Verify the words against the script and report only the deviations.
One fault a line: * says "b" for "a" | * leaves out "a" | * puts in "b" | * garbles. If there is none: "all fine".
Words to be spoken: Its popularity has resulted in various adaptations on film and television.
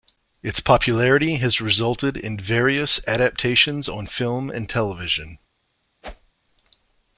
all fine